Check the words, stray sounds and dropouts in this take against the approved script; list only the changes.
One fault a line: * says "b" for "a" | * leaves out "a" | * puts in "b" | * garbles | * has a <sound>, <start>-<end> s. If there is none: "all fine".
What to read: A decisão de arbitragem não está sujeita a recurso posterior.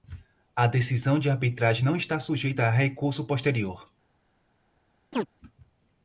* has a chirp, 5.1-5.3 s